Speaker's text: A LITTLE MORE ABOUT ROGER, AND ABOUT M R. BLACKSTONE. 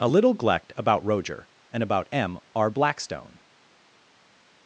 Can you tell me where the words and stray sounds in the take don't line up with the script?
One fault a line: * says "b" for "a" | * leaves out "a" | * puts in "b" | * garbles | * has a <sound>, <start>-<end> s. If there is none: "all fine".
* says "Glect" for "MORE"